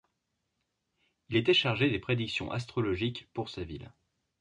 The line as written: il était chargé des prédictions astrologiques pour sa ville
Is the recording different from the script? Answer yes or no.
no